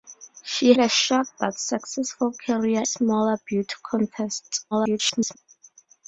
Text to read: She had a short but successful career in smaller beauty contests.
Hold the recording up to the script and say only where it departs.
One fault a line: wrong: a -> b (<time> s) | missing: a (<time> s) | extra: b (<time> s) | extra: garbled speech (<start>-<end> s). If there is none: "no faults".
missing: had (0.7 s)
missing: in (2.8 s)
extra: garbled speech (4.7-5.4 s)